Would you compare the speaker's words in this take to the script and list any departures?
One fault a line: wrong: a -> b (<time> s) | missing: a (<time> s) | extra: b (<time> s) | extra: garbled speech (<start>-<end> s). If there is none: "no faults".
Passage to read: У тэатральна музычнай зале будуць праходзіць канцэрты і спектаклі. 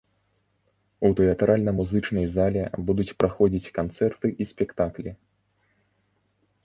no faults